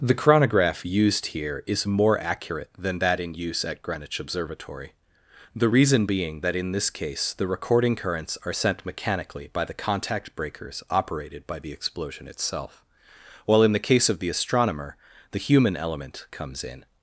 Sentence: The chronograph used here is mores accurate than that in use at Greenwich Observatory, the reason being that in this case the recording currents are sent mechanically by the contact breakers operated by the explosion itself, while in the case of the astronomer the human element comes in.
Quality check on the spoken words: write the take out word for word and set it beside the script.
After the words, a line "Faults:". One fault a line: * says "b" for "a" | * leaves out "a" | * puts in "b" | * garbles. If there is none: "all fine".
The chronograph used here is more accurate than that in use at Greenwich Observatory, the reason being that in this case the recording currents are sent mechanically by the contact breakers operated by the explosion itself, while in the case of the astronomer the human element comes in.
Faults:
* says "more" for "mores"